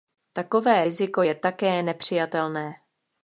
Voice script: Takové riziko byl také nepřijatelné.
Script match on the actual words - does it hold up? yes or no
no